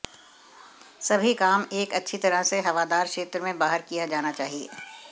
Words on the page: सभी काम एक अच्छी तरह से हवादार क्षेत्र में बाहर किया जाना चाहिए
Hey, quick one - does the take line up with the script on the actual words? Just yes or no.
yes